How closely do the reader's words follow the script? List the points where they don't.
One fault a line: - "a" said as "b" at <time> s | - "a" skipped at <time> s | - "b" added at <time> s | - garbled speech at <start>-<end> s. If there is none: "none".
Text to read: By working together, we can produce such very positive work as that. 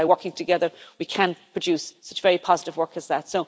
none